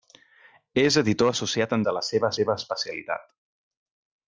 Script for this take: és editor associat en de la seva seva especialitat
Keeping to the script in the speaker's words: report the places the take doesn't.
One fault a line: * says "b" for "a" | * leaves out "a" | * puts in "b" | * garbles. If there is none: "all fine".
all fine